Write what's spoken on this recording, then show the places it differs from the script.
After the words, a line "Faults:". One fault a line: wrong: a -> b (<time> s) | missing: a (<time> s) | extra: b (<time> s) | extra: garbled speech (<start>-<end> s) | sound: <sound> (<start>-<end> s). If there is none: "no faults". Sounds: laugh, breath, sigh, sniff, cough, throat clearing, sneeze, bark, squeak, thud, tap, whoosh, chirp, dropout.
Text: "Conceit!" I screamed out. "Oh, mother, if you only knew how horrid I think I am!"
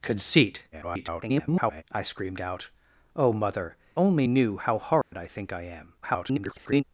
"Conceit!" [garbled] I screamed out. "Oh, mother, only knew how horrid I think I am!" [garbled]
Faults:
extra: garbled speech (0.7-1.8 s)
missing: if you (3.7 s)
sound: dropout (5.0-5.1 s)
extra: garbled speech (6.0-6.8 s)